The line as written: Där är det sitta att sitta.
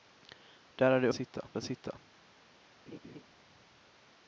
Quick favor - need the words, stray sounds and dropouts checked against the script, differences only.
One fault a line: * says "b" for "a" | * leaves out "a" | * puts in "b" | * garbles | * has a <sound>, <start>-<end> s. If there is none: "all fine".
* has a laugh, 2.9-3.2 s